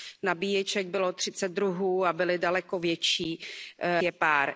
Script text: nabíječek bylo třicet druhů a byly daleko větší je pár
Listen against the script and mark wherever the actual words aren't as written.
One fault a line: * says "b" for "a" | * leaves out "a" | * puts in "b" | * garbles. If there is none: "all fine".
all fine